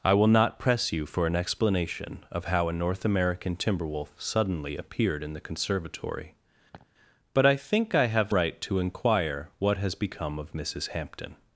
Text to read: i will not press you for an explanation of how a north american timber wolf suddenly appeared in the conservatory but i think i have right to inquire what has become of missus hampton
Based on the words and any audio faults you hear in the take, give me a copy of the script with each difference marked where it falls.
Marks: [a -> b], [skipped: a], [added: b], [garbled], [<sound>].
i will not press you for an explanation of how a north american timber wolf suddenly appeared in the conservatory [laugh] but i think i have right to inquire what has become of missus hampton